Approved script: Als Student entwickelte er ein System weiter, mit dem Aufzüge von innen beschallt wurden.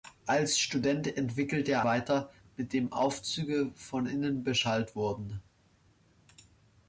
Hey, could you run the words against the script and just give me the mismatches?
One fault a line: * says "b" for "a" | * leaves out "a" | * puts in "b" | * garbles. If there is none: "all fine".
* leaves out "ein System"